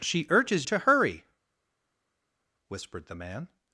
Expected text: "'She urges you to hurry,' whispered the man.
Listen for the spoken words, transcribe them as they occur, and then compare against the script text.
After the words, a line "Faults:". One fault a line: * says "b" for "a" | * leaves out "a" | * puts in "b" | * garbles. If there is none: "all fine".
"'She urges to hurry,' whispered the man.
Faults:
* leaves out "you"